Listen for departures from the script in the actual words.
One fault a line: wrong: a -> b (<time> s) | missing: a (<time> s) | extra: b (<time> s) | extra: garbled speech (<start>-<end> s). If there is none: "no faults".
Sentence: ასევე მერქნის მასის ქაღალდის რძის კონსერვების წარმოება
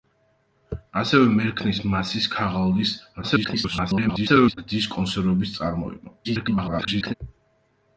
extra: garbled speech (3.2-4.6 s)
extra: garbled speech (6.2-7.1 s)